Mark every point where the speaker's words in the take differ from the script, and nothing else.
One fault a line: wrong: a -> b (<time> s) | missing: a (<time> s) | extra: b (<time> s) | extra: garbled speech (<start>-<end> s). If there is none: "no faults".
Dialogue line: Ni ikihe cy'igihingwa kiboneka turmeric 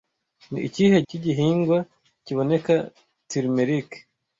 no faults